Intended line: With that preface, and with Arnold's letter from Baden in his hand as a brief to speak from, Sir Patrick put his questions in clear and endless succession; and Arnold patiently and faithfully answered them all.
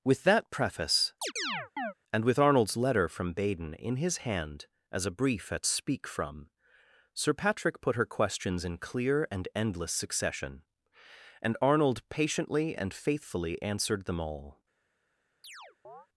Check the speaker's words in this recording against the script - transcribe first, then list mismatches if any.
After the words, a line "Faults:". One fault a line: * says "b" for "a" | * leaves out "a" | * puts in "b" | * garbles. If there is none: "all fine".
With that preface, and with Arnold's letter from Baden in his hand as a brief at speak from, Sir Patrick put her questions in clear and endless succession; and Arnold patiently and faithfully answered them all.
Faults:
* says "at" for "to"
* says "her" for "his"